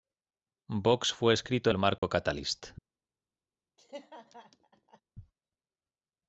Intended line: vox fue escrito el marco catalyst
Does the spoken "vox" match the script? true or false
true